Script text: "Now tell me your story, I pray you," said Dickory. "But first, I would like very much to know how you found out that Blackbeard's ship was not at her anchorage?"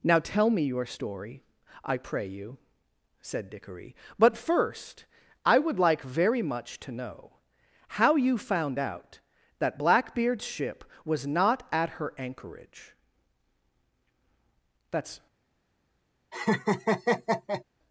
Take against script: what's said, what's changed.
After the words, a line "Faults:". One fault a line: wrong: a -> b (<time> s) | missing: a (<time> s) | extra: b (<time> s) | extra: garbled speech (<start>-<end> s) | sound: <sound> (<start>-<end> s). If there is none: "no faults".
"Now tell me your story, I pray you," said Dickory. "But first, I would like very much to know how you found out that Blackbeard's ship was not at her anchorage?" "That's
Faults:
extra: That's (14.9 s)
sound: laugh (16.3-17.6 s)